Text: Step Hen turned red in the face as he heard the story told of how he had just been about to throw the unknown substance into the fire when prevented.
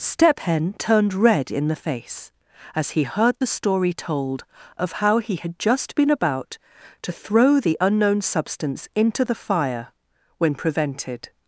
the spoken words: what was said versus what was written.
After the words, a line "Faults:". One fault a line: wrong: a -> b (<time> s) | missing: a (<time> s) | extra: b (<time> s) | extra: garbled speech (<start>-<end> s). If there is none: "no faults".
Step Hen turned red in the face as he heard the story told of how he had just been about to throw the unknown substance into the fire when prevented.
Faults:
no faults